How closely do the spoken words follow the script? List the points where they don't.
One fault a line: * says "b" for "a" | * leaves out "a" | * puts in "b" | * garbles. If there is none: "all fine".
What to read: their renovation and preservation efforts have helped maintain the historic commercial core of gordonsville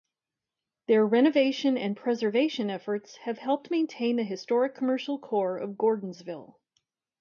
all fine